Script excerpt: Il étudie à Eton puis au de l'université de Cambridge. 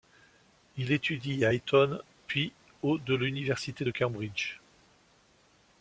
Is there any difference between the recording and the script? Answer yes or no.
no